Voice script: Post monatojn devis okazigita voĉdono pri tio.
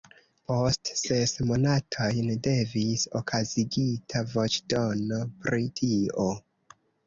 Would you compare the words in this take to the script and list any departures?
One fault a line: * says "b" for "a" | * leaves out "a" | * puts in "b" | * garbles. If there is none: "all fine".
* puts in "ses"